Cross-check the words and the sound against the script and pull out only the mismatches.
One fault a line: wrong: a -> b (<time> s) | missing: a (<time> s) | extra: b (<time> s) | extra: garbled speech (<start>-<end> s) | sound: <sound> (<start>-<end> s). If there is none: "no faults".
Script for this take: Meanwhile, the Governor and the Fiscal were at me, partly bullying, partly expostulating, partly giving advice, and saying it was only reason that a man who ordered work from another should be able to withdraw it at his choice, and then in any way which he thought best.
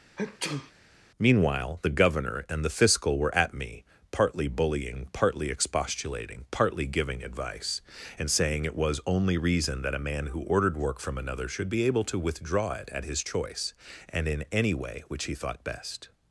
sound: sneeze (0.2-0.7 s)
missing: then (14.3 s)